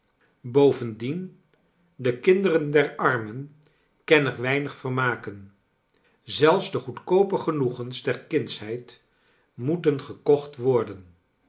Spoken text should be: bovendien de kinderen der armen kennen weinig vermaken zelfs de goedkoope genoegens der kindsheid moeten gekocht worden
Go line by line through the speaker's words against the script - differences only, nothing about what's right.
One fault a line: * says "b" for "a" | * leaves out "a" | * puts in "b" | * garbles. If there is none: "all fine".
all fine